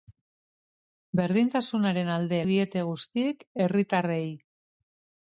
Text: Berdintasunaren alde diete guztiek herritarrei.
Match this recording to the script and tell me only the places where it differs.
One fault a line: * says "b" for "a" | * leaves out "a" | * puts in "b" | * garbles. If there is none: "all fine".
all fine